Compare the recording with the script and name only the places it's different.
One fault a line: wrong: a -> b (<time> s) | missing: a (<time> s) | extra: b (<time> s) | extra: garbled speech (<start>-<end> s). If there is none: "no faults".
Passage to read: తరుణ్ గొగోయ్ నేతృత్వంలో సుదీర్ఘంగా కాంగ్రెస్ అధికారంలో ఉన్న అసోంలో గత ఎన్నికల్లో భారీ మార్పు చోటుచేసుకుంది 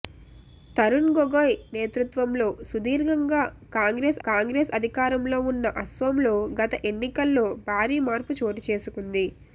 extra: కాంగ్రెస్ (4.3 s)